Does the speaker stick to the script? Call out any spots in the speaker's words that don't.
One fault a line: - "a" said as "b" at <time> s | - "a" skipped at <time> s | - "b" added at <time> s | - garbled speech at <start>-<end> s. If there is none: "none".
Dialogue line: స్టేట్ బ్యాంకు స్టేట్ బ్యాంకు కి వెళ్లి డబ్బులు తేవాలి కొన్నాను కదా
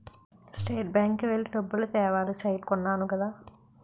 - "స్టేట్ బ్యాంకు" skipped at 1.2 s
- "సైట్" added at 2.4 s